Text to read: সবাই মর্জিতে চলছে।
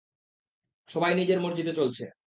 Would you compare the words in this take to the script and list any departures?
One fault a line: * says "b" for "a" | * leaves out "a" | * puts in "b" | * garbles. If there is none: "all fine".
* puts in "নিজের"